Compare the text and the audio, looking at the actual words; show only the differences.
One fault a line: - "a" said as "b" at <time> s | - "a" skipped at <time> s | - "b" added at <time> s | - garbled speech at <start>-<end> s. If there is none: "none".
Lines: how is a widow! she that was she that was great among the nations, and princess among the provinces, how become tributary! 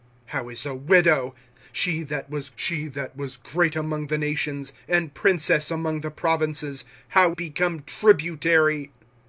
none